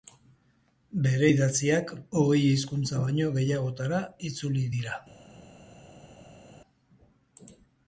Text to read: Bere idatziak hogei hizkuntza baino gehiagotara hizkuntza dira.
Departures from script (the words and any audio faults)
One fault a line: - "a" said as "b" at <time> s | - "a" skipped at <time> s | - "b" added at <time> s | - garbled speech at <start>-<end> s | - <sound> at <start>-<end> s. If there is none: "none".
- "hizkuntza" said as "itzuli" at 4.3 s